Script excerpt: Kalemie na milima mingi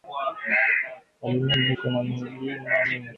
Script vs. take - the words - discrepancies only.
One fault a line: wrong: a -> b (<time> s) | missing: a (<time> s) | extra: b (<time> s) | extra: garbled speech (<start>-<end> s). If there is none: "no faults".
extra: iko (1.7 s)